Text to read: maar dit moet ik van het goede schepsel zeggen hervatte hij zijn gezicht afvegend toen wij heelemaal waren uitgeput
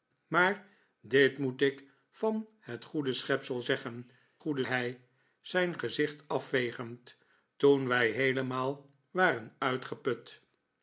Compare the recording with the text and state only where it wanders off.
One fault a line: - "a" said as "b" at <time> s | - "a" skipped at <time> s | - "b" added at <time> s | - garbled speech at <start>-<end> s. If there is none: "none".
- "hervatte" said as "goede" at 4.4 s